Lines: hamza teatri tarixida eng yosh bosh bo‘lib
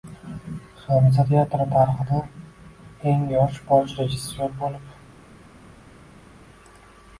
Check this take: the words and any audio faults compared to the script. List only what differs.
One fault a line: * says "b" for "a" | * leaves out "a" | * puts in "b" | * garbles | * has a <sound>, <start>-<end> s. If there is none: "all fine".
* puts in "rejissyor"